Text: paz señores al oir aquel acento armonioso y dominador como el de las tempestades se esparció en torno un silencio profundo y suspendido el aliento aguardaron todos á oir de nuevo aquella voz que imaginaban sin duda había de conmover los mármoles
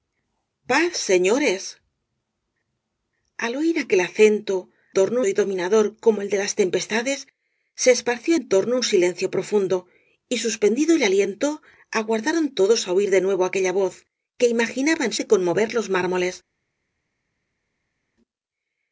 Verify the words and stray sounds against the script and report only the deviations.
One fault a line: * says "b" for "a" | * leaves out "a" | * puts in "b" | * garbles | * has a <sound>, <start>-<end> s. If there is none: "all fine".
* says "torno" for "armonioso"
* leaves out "sin duda había"